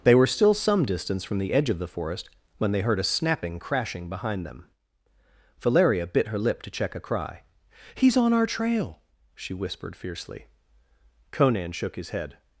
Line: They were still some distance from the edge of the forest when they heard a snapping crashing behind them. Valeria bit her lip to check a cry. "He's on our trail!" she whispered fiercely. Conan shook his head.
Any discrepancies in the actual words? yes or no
no